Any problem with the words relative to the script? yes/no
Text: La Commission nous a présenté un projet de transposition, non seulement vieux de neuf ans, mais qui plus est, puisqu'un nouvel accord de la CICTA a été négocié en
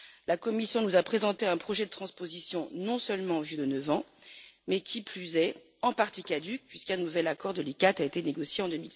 yes